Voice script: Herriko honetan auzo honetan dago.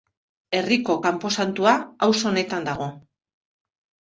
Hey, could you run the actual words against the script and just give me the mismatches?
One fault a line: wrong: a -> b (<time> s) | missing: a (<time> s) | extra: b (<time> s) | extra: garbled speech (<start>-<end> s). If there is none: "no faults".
wrong: honetan -> kanposantua (1.1 s)